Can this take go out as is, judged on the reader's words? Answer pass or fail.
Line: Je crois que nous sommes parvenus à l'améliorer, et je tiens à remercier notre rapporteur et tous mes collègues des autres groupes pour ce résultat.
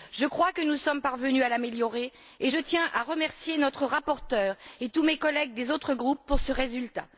pass